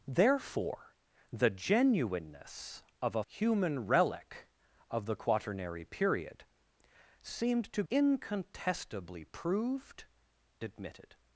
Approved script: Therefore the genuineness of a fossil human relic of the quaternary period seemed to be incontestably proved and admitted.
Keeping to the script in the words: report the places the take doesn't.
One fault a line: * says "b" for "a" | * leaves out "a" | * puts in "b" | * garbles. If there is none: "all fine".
* leaves out "fossil"
* leaves out "be"
* leaves out "and"